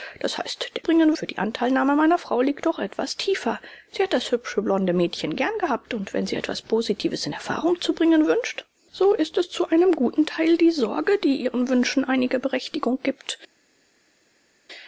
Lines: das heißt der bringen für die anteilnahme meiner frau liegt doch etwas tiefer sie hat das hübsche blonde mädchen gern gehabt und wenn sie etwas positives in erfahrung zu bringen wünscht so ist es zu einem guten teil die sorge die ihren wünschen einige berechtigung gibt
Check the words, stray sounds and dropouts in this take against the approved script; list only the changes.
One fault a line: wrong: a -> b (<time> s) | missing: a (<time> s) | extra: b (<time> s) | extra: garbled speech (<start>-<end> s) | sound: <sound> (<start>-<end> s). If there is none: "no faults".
no faults